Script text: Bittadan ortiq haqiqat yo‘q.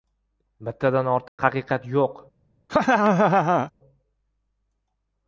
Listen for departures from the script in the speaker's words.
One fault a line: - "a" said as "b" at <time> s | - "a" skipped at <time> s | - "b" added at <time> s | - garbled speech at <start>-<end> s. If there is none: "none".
none